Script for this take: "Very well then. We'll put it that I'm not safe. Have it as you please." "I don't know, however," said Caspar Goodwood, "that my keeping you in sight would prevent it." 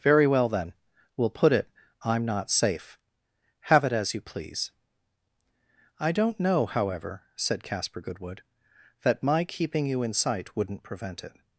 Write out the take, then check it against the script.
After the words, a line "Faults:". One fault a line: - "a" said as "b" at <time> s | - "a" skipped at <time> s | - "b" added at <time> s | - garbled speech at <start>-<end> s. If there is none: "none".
"Very well then. We'll put it I'm not safe. Have it as you please." "I don't know, however," said Caspar Goodwood, "that my keeping you in sight wouldn't prevent it."
Faults:
- "that" skipped at 1.7 s
- "would" said as "wouldn't" at 10.6 s